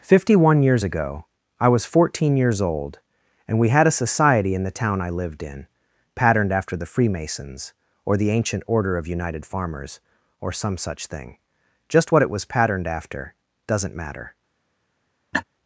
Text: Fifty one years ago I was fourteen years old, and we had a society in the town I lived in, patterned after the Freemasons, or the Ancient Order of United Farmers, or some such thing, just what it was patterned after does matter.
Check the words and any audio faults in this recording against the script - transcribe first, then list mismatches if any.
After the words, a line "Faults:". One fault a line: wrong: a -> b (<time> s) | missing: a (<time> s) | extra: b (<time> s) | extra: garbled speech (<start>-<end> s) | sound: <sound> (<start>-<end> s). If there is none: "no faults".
Fifty one years ago I was fourteen years old, and we had a society in the town I lived in, patterned after the Freemasons, or the Ancient Order of United Farmers, or some such thing, just what it was patterned after doesn't matter.
Faults:
wrong: does -> doesn't (13.7 s)
sound: laugh (15.3-15.4 s)